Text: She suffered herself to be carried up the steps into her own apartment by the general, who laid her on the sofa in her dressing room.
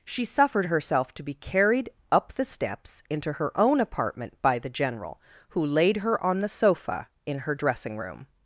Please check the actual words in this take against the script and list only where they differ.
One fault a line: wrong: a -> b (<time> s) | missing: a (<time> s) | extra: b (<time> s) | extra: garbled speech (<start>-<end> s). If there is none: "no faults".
no faults